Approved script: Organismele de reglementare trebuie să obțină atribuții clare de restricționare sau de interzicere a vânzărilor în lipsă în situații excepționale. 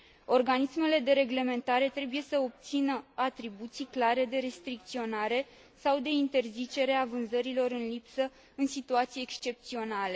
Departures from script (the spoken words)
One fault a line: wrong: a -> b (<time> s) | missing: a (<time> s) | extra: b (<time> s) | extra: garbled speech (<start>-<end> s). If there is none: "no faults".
no faults